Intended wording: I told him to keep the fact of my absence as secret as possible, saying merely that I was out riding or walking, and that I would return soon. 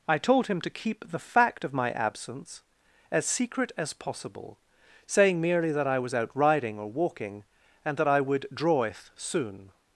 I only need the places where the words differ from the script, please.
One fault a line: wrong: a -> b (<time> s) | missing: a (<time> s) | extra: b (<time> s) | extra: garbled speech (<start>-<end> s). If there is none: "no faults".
wrong: return -> draweth (8.5 s)